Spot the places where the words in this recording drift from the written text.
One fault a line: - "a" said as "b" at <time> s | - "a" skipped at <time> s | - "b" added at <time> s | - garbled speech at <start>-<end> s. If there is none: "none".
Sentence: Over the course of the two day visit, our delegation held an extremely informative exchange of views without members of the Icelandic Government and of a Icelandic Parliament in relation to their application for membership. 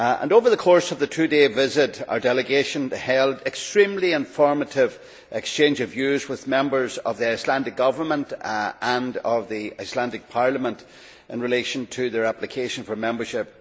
- "without" said as "with" at 6.3 s
- "a" said as "the" at 9.5 s